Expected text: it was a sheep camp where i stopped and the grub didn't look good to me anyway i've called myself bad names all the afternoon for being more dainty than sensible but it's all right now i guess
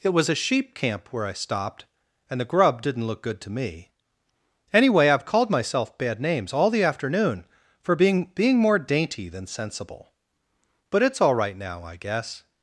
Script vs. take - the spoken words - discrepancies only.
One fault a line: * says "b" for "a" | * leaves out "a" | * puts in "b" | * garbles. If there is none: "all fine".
* puts in "being"